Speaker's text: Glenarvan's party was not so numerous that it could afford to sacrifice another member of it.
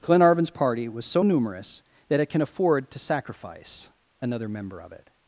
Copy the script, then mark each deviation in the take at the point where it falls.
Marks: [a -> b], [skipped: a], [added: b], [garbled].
Glenarvan's party was [skipped: not] so numerous that it [could -> can] afford to sacrifice another member of it.